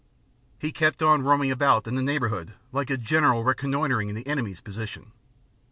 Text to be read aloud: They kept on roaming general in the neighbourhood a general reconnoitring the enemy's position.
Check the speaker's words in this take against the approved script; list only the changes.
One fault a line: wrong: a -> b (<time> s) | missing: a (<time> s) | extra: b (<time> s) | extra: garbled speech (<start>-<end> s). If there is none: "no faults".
wrong: They -> He (0.6 s)
wrong: general -> about (1.5 s)
extra: like (2.7 s)